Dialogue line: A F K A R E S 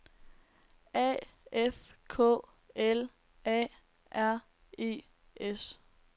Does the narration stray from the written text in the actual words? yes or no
yes